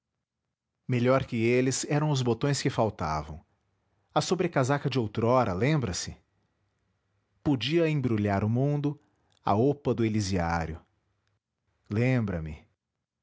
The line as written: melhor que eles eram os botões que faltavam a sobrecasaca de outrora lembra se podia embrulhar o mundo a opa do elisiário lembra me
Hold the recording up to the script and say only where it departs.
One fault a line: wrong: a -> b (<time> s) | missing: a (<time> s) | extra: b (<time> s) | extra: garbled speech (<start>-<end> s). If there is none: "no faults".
no faults